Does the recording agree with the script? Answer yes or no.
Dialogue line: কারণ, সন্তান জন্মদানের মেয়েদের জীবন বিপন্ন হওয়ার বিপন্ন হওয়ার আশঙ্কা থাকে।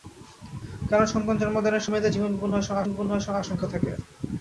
yes